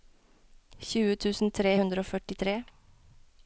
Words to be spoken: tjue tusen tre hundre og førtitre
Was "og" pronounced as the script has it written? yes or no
yes